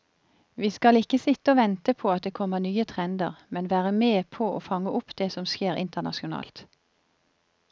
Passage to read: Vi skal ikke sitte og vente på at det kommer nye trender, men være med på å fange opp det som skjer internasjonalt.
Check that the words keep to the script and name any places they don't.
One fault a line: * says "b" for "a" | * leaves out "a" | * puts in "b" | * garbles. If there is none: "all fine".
all fine